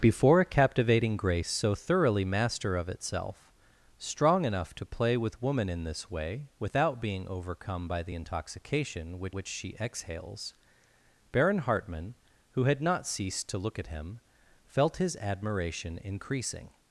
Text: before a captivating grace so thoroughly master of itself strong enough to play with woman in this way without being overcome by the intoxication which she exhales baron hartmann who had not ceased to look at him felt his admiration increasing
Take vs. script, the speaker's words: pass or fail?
fail